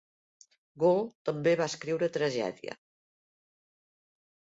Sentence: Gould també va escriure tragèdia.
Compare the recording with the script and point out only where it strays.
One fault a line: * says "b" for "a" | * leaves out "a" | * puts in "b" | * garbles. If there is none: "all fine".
all fine